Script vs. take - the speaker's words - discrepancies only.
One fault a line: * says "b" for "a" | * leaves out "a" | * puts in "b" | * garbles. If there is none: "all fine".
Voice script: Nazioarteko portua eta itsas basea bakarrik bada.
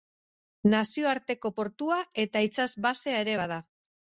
* says "ere" for "bakarrik"